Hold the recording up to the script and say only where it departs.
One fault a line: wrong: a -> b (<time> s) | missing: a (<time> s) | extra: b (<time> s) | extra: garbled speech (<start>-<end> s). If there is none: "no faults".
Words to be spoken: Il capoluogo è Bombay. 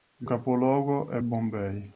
no faults